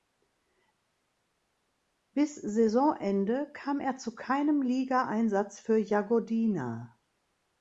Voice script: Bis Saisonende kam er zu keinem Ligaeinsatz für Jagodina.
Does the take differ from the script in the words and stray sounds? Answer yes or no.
no